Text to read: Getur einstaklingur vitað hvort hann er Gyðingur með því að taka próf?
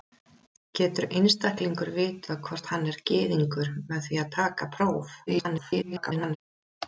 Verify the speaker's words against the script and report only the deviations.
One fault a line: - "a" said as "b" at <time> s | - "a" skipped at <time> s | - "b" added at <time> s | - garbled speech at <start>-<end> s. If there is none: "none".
- garbled speech at 5.3-6.4 s